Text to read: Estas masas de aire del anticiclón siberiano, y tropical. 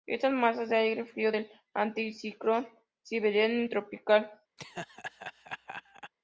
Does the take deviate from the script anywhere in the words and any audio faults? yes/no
yes